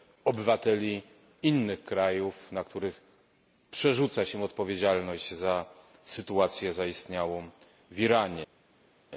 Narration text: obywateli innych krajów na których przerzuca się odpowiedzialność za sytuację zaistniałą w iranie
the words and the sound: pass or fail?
pass